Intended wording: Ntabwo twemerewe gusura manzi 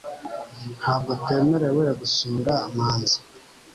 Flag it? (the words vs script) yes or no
no